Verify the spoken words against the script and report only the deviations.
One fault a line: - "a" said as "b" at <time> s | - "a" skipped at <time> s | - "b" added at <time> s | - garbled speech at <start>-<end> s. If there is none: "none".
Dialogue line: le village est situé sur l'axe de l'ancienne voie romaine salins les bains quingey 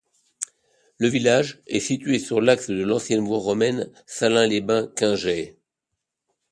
none